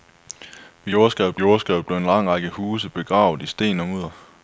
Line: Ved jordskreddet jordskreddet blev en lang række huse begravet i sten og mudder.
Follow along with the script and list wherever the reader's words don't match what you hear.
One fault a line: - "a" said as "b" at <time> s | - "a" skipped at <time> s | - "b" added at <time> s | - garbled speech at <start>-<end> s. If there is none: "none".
none